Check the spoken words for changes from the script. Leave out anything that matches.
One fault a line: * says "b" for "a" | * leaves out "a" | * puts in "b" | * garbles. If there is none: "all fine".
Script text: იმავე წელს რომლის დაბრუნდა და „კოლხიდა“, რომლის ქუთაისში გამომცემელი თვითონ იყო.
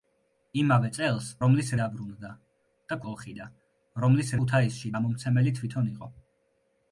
all fine